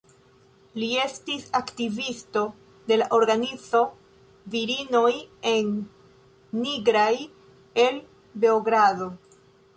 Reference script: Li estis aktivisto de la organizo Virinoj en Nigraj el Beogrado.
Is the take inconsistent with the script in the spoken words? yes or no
no